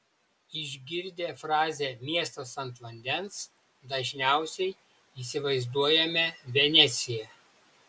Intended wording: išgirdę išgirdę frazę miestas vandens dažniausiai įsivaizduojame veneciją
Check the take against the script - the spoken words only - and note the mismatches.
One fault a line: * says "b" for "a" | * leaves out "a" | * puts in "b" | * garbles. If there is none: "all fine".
* leaves out "išgirdę"
* puts in "ant"